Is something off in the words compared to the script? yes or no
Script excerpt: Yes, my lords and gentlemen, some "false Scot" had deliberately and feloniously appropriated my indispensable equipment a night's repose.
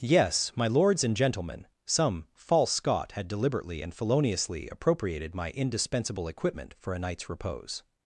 yes